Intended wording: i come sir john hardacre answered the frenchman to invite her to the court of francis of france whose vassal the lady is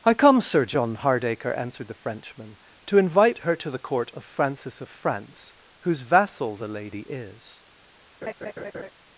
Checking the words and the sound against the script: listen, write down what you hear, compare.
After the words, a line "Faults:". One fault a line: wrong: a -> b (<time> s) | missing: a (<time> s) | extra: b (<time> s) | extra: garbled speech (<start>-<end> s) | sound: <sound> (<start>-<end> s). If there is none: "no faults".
i come sir john hardacre answered the frenchman to invite her to the court of francis of france whose vassal the lady is
Faults:
sound: laugh (8.2-8.9 s)